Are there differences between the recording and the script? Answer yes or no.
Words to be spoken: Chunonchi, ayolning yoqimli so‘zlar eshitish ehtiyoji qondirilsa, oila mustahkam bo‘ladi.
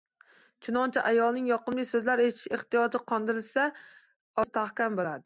yes